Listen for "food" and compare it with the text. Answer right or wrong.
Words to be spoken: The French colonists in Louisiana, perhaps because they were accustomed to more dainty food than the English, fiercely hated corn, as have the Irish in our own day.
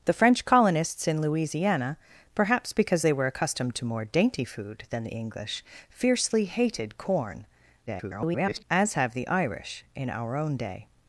right